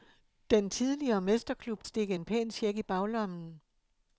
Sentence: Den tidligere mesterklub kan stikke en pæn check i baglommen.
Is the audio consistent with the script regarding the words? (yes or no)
no